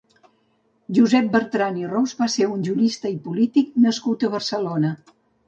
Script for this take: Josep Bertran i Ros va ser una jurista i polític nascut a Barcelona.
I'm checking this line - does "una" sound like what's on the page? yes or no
no